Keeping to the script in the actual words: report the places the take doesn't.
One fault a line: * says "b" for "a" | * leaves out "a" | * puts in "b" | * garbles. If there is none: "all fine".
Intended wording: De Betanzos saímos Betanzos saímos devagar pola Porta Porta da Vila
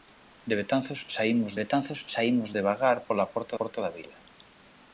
all fine